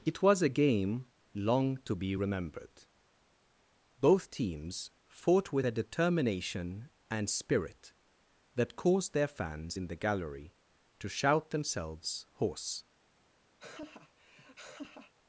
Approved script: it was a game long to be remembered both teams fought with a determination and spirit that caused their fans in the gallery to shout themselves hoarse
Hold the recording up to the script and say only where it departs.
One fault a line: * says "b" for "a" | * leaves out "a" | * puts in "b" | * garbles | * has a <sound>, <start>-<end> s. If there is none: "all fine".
* has a laugh, 13.6-15.1 s